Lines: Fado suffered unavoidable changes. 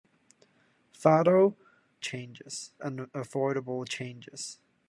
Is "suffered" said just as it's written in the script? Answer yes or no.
no